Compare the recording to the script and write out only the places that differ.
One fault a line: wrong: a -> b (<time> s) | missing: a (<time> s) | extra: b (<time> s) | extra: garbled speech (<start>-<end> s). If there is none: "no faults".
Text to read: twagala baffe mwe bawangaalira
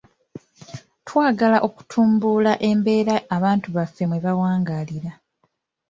extra: okutumbula embeera abantu (1.7 s)